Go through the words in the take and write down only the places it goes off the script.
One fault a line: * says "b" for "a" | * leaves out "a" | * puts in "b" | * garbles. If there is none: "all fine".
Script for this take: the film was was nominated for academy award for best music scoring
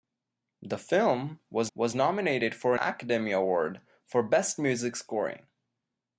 all fine